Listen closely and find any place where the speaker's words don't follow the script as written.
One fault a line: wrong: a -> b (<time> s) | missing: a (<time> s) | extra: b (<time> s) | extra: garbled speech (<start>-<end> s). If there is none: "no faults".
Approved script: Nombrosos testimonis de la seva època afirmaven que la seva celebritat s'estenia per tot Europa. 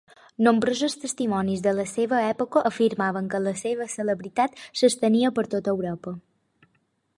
no faults